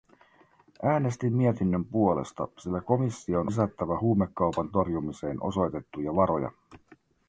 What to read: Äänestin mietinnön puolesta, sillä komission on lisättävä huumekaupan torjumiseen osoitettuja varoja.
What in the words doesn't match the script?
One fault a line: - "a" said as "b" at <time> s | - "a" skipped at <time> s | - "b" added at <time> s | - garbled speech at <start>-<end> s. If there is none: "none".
- "on" skipped at 3.5 s